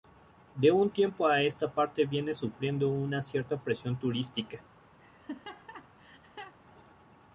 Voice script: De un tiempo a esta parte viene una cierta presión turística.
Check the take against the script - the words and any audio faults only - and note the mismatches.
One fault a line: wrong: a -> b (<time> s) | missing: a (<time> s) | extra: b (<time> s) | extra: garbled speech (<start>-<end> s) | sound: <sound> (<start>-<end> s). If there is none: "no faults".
extra: sufriendo (2.3 s)
sound: laugh (5.0-6.6 s)